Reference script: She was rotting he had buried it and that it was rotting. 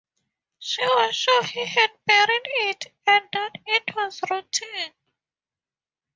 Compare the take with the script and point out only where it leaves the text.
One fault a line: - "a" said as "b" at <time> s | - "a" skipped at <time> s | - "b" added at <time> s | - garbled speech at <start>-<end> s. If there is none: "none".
- "rotting" said as "sure" at 1.1 s